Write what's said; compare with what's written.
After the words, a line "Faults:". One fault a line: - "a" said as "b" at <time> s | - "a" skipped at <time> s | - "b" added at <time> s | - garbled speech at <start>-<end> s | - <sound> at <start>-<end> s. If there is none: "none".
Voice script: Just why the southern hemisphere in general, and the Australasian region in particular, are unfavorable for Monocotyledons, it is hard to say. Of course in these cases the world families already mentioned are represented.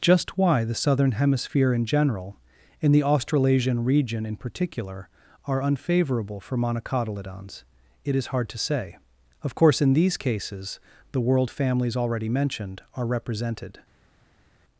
Just why the southern hemisphere in general, and the Australasian region in particular, are unfavorable for Monocotyledons, it is hard to say. Of course in these cases the world families already mentioned are represented.
Faults:
none